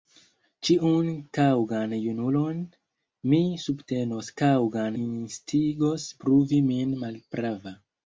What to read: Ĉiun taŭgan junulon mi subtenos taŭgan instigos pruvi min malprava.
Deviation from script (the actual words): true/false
false